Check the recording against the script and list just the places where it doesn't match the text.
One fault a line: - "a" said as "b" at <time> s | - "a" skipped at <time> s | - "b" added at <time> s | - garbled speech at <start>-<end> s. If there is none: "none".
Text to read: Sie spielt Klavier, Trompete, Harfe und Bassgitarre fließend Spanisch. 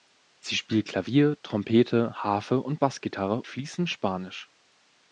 none